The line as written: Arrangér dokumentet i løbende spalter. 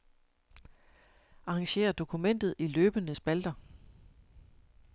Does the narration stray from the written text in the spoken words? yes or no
no